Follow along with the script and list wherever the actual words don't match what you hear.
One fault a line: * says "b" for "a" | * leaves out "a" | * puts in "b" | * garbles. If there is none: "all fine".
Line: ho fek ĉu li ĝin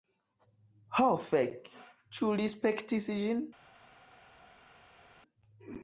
* puts in "spektis"